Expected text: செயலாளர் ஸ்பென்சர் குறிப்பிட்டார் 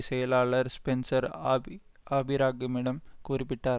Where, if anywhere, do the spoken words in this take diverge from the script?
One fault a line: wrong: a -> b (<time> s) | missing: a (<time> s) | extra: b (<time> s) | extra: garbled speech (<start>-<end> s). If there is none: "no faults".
extra: ஆபி ஆபிரகாமிடம் (1.5 s)